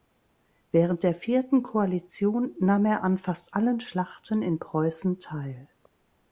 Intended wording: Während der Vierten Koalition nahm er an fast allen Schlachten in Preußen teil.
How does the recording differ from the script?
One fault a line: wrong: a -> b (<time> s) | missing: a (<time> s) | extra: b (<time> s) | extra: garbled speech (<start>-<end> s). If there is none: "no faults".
no faults